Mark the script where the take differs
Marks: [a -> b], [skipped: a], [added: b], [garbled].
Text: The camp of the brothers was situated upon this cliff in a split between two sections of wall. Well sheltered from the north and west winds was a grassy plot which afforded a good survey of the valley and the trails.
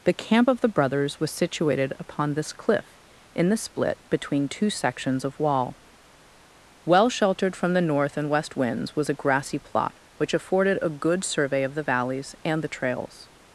The camp of the brothers was situated upon this cliff in [a -> the] split between two sections of wall. Well sheltered from the north and west winds was a grassy plot which afforded a good survey of the [valley -> valleys] and the trails.